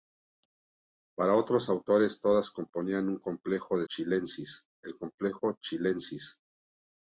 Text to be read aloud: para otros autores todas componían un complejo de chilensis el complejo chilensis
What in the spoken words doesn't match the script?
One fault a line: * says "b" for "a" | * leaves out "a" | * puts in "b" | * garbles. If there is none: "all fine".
all fine